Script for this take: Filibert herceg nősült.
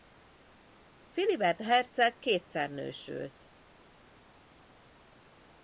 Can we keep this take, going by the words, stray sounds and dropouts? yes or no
no